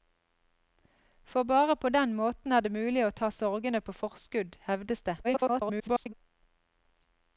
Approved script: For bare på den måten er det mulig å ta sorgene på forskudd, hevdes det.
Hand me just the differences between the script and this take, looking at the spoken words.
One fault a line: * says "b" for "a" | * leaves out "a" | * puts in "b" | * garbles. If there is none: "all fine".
* garbles